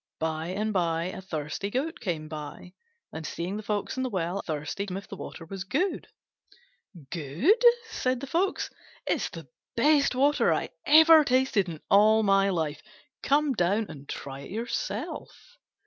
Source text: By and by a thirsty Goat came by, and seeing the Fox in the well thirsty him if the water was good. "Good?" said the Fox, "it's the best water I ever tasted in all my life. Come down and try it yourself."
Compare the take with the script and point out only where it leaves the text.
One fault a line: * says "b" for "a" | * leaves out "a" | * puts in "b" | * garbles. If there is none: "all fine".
all fine